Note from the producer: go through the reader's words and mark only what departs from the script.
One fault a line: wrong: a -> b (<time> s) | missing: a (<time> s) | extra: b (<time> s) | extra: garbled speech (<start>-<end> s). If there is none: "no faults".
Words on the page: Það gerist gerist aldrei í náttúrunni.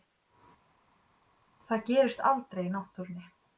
missing: gerist (2.2 s)